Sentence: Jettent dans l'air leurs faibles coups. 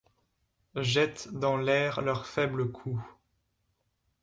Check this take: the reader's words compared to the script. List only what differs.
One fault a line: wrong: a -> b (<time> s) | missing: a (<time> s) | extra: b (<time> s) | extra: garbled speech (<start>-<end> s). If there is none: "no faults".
no faults